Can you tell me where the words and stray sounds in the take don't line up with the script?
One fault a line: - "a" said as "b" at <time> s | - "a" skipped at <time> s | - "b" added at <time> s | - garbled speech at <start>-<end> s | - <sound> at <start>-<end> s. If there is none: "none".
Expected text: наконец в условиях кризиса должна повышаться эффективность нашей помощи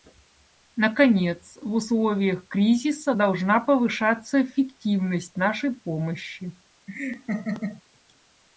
- laugh at 6.9-7.8 s